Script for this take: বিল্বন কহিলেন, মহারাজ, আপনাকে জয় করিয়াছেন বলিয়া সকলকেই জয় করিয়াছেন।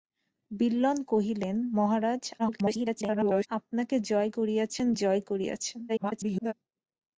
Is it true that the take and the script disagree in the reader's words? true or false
true